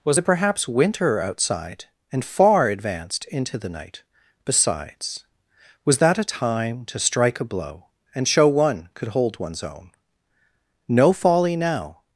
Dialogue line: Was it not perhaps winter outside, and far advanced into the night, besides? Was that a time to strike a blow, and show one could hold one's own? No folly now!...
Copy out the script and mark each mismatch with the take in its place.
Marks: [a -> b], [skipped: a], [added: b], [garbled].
Was it [skipped: not] perhaps winter outside, and far advanced into the night, besides? Was that a time to strike a blow, and show one could hold one's own? No folly now!...